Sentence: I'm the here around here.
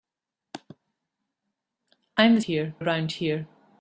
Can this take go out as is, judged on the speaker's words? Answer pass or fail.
pass